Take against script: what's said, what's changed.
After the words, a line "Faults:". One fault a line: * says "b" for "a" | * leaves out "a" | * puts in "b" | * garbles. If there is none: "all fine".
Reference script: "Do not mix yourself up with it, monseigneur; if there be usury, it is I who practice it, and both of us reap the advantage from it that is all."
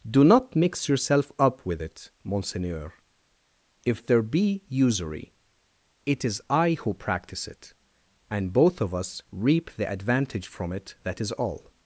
"Do not mix yourself up with it, monseigneur; if there be usury, it is I who practice it, and both of us reap the advantage from it that is all."
Faults:
all fine